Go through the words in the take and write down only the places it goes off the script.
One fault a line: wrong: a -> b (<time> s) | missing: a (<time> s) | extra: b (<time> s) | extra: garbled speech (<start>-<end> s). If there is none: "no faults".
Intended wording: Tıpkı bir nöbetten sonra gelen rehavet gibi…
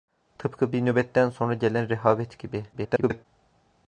extra: garbled speech (2.7-3.3 s)